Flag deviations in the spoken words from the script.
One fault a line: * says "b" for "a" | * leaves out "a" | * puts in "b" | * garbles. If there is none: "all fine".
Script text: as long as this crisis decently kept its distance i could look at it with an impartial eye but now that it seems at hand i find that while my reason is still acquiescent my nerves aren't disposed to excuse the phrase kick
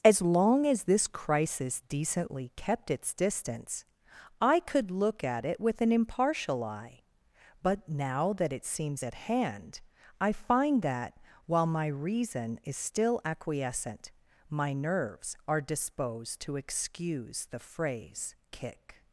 * says "are" for "aren't"